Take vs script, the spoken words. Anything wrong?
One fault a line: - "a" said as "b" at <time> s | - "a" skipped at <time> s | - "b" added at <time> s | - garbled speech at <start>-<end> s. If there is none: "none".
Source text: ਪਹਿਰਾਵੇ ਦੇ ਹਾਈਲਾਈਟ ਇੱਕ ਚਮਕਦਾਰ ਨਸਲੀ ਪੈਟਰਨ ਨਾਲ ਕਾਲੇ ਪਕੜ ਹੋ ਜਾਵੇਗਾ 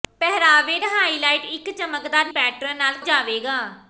- "ਦੇ" skipped at 0.8 s
- "ਨਸਲੀ" skipped at 2.3 s
- "ਕਾਲੇ ਪਕੜ ਹੋ" skipped at 2.9 s